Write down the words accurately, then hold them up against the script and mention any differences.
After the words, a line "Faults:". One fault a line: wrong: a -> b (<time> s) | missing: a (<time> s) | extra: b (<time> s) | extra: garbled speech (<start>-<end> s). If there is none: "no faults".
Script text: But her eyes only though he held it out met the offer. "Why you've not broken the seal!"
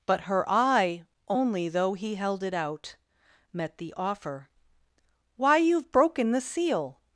But her eye only though he held it out met the offer. "Why you've broken the seal!"
Faults:
wrong: eyes -> eye (0.5 s)
missing: not (5.9 s)